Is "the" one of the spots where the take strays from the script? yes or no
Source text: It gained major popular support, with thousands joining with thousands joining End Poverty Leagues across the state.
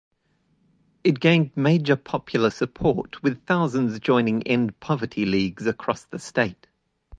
no